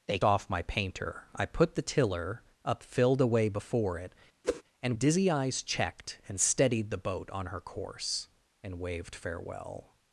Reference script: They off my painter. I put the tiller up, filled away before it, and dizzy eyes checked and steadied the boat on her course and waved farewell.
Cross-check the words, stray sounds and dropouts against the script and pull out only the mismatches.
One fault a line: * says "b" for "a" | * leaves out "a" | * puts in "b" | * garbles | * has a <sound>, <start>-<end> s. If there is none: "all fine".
* has a whoosh, 4.4-4.6 s